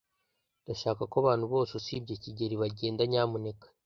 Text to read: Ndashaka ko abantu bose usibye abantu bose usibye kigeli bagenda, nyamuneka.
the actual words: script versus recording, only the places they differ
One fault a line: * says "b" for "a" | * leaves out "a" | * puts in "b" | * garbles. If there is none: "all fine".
* leaves out "abantu bose usibye"